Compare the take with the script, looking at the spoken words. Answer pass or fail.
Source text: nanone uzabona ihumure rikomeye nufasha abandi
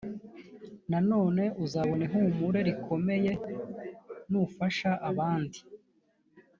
pass